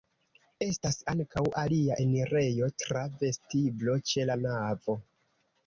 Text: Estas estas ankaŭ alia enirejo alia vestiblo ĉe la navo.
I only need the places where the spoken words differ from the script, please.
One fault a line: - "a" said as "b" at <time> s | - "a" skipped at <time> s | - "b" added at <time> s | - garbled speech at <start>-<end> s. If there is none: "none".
- "estas" skipped at 0.9 s
- "alia" said as "tra" at 2.9 s